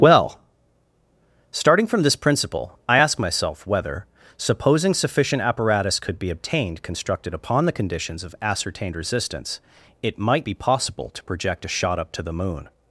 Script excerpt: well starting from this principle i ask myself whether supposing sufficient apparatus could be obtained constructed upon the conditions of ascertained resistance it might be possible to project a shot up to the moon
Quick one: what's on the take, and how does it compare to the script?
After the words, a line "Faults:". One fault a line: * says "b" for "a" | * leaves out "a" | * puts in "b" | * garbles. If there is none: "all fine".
well starting from this principle i ask myself whether supposing sufficient apparatus could be obtained constructed upon the conditions of ascertained resistance it might be possible to project a shot up to the moon
Faults:
all fine